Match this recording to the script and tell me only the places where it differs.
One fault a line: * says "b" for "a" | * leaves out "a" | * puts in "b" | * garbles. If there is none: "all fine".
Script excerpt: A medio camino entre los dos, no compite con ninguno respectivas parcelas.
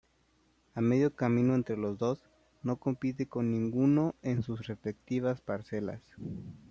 * puts in "en sus"